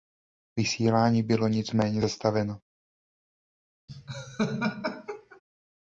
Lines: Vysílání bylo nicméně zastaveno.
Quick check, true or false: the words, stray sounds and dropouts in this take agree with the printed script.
false